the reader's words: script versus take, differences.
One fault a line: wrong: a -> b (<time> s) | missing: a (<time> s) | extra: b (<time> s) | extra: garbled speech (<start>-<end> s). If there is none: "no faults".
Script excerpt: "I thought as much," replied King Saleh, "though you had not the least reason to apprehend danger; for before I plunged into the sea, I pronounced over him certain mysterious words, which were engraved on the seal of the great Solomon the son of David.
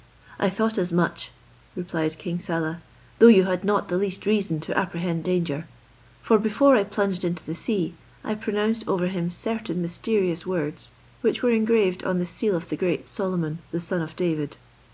no faults